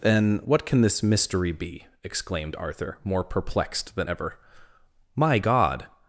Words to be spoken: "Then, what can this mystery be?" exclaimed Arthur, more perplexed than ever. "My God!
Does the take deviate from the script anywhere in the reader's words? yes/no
no